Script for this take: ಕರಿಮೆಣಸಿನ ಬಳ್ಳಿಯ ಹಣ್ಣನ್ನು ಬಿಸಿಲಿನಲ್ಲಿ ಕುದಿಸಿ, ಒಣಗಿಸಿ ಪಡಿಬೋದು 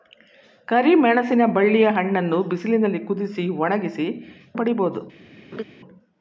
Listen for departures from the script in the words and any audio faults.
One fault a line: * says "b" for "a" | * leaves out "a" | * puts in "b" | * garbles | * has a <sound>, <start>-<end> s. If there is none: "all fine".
* has a laugh, 5.5-5.6 s